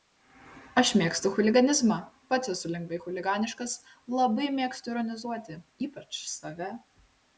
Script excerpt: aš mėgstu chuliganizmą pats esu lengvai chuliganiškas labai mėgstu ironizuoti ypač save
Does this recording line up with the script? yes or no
yes